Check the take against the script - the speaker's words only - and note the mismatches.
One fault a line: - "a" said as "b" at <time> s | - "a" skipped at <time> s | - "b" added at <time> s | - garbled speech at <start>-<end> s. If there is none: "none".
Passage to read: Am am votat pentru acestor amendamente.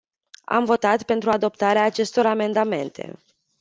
- "am" skipped at 0.7 s
- "adoptarea" added at 1.3 s